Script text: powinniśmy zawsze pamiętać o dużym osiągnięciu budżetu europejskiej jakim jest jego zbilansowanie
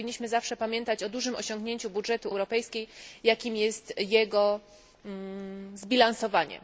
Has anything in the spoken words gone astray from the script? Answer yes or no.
no